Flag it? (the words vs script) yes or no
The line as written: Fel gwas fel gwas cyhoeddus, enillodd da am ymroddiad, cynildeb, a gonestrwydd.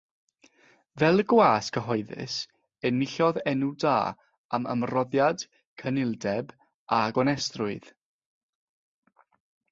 yes